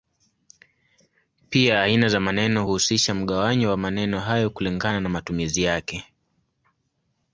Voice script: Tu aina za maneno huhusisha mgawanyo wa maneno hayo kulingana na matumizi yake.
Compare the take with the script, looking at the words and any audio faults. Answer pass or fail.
fail